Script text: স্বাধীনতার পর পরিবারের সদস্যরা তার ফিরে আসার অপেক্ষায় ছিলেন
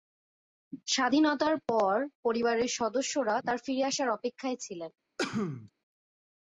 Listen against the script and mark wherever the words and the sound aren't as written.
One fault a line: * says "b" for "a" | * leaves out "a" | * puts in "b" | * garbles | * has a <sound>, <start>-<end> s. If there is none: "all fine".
* has a sneeze, 5.2-5.7 s